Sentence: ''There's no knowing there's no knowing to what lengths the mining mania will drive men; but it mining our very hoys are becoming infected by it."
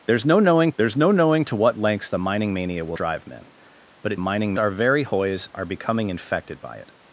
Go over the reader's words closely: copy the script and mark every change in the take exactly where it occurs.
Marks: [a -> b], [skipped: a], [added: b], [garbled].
''There's no knowing there's no knowing to what lengths the mining mania will drive men; but it mining our very hoys are becoming infected by it."